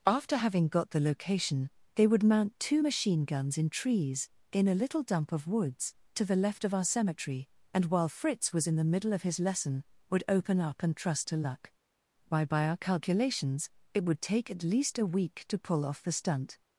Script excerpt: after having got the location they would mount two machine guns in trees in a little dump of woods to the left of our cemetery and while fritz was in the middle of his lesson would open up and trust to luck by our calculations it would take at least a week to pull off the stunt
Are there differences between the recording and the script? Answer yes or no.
yes